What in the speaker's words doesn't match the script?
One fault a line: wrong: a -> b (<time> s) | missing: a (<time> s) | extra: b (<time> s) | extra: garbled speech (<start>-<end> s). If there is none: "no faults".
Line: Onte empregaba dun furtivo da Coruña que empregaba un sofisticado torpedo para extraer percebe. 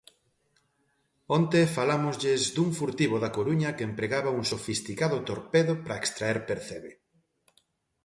wrong: empregaba -> falámoslles (1.8 s)